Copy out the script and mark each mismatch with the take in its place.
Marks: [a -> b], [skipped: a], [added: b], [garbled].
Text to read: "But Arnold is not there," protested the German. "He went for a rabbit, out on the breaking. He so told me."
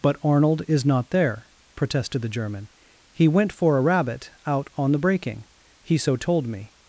"But Arnold is not there," protested the German. "He went for a rabbit, out on the breaking. He so told me."